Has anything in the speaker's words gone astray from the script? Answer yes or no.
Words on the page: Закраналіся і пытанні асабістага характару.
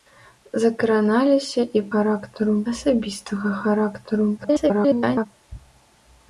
yes